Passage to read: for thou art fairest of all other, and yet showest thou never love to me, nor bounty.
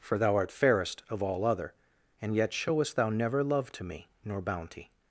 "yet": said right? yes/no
yes